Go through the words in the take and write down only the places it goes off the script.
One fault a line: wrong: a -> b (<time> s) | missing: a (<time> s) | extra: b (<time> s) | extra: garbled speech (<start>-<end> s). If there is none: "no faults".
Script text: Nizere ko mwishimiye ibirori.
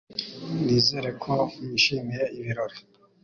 no faults